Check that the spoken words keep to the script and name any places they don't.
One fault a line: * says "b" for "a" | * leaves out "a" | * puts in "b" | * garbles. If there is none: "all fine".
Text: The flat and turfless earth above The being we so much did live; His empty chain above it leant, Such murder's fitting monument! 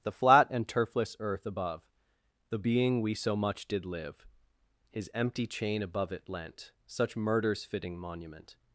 all fine